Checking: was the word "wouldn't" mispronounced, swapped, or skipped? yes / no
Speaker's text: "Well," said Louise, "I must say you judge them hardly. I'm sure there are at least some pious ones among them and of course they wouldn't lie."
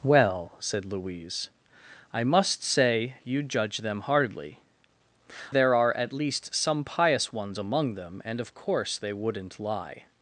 no